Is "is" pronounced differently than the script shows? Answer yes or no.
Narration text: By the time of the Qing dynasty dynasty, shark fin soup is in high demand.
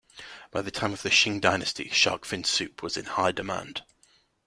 yes